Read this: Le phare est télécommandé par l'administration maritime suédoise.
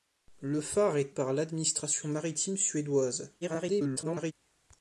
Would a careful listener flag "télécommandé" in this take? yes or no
yes